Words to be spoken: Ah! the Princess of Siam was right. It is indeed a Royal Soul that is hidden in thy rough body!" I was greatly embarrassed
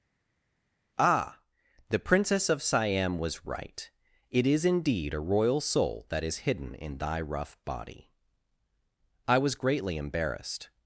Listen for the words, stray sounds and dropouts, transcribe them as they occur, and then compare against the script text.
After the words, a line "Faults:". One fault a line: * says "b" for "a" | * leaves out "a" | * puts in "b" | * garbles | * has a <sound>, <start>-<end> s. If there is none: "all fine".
Ah! the Princess of Siam was right. It is indeed a Royal Soul that is hidden in thy rough body!" I was greatly embarrassed
Faults:
all fine